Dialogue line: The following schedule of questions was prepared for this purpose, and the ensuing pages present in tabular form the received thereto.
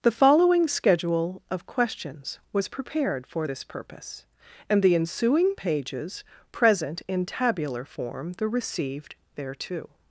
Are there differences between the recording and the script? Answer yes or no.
no